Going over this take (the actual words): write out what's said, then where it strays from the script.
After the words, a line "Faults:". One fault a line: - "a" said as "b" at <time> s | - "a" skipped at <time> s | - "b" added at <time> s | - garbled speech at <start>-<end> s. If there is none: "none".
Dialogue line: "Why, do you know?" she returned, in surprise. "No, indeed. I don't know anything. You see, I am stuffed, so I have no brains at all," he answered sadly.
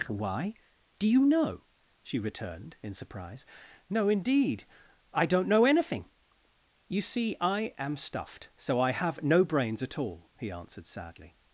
"Why, do you know?" she returned, in surprise. "No, indeed. I don't know anything. You see, I am stuffed, so I have no brains at all," he answered sadly.
Faults:
none